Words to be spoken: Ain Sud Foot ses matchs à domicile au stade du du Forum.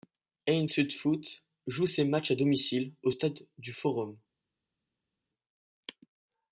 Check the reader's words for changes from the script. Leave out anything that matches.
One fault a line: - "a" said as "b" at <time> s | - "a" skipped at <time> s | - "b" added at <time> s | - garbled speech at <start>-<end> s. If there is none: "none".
- "joue" added at 1.7 s
- "du" skipped at 3.7 s